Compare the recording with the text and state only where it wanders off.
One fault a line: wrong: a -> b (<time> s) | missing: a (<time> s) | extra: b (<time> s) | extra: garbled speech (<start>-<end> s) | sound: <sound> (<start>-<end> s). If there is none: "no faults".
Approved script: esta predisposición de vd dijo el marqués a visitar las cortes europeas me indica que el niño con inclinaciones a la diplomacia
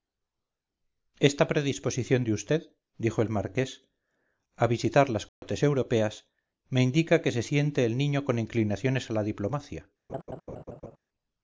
sound: dropout (5.3-5.4 s)
extra: se siente (7.3 s)
sound: laugh (10.1-11.0 s)